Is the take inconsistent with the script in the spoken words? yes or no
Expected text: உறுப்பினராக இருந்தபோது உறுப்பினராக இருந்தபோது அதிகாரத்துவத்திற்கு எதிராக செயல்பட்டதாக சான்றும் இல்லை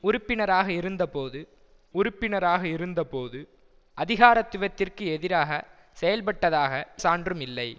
no